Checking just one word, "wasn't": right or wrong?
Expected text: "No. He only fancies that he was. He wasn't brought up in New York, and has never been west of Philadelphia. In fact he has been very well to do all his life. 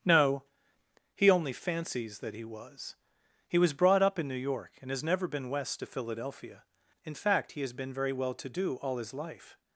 wrong